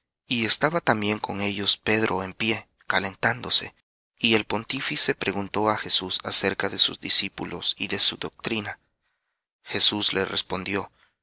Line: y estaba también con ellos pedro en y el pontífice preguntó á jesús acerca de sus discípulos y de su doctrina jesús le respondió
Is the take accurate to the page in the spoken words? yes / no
no